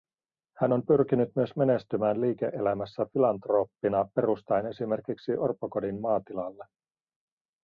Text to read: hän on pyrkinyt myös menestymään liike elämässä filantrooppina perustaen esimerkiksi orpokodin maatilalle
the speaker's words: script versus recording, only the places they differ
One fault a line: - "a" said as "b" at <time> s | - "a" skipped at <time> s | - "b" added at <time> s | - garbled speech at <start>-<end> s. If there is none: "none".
none